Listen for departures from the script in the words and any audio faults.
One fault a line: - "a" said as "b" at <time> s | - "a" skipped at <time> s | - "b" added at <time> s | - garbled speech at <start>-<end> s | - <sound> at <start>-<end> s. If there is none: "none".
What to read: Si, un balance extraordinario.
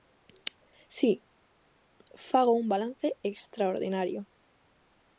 - "fago" added at 2.1 s